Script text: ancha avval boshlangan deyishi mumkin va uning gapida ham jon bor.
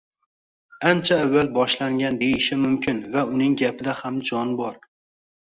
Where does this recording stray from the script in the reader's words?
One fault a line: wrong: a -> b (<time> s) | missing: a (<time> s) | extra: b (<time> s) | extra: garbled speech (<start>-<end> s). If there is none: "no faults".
no faults